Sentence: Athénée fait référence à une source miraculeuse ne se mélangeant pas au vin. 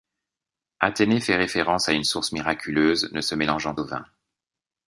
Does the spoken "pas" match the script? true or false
false